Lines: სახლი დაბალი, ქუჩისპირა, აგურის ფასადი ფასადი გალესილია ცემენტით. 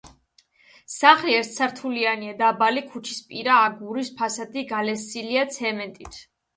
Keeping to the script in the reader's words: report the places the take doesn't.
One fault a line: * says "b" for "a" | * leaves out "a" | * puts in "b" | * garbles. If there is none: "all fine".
* puts in "ერთსართულიანია"
* leaves out "ფასადი"